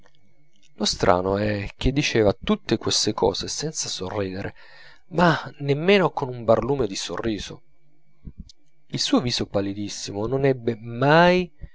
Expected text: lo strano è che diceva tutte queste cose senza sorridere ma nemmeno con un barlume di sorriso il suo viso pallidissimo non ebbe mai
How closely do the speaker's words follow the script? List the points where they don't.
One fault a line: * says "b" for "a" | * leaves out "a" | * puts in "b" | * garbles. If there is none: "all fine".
all fine